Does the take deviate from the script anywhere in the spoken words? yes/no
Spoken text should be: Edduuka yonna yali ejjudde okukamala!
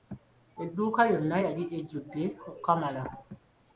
no